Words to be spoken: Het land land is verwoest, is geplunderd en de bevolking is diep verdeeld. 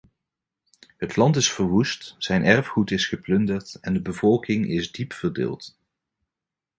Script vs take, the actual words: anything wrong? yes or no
yes